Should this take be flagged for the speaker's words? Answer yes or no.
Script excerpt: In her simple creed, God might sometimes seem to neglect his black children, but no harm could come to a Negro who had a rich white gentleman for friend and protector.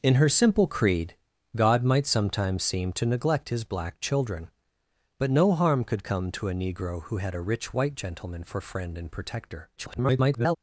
yes